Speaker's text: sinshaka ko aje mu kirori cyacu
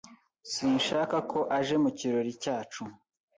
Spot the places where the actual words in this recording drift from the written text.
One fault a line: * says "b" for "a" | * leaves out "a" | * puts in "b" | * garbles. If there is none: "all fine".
all fine